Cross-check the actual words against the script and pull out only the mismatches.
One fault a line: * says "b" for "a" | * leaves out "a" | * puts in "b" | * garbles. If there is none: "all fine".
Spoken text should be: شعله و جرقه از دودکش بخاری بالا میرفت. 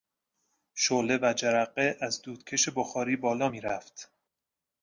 all fine